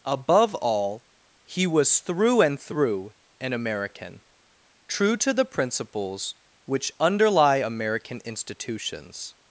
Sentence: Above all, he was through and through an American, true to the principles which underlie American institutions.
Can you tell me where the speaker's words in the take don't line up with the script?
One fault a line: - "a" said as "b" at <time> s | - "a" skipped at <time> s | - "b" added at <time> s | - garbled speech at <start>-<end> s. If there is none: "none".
none